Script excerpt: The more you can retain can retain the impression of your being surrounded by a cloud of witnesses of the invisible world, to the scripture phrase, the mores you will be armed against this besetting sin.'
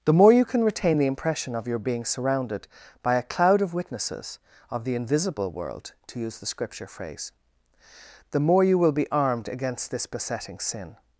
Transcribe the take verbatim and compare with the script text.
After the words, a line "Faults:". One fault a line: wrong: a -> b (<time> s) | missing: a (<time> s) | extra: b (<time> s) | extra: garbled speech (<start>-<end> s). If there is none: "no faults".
The more you can retain the impression of your being surrounded by a cloud of witnesses of the invisible world, to use the scripture phrase, the more you will be armed against this besetting sin.'
Faults:
missing: can retain (1.0 s)
extra: use (6.2 s)
wrong: mores -> more (8.4 s)